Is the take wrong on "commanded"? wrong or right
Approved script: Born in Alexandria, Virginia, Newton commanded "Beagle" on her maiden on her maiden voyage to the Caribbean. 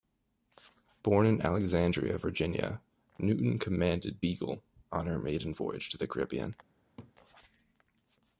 right